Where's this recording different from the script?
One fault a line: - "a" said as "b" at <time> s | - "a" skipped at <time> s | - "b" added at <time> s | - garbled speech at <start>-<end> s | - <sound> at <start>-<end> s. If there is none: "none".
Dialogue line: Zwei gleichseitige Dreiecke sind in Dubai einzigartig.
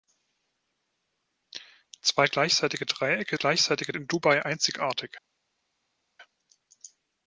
- "sind" said as "gleichseitige" at 3.3 s